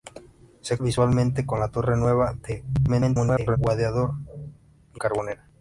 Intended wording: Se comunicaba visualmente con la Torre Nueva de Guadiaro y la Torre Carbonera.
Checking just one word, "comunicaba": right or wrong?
wrong